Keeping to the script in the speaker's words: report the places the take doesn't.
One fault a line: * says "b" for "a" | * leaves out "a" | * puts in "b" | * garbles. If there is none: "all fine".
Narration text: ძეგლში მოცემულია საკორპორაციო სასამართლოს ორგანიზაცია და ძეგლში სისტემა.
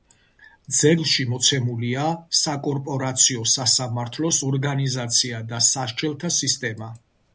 * says "სასჯელთა" for "ძეგლში"